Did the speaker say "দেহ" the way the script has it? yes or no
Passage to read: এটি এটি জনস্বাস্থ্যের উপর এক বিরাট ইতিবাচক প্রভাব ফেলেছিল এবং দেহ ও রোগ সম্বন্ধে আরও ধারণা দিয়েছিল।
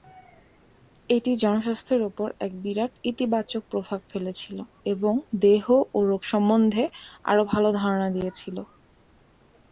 yes